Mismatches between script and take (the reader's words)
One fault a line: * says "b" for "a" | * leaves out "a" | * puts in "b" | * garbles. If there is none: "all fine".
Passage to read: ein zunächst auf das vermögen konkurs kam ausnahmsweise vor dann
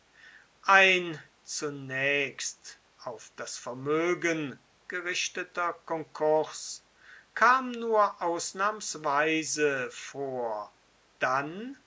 * puts in "gerichteter"
* puts in "nur"